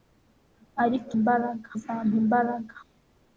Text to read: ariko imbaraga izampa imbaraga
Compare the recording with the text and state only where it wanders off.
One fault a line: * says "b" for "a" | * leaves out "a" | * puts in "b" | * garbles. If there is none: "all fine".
all fine